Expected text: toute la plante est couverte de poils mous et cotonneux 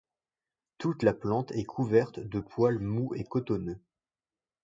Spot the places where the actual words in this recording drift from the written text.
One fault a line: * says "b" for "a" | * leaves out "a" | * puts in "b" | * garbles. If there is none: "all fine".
all fine